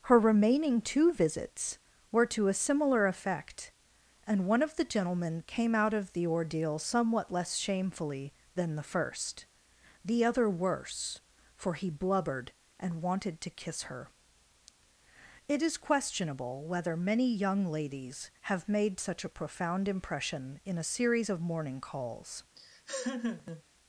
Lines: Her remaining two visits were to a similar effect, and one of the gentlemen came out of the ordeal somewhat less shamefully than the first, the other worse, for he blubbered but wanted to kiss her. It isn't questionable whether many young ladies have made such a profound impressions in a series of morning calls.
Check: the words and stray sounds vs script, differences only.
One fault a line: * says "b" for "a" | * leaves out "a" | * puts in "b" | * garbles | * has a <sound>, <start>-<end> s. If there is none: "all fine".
* says "and" for "but"
* says "is" for "isn't"
* says "impression" for "impressions"
* has a laugh, 22.6-23.6 s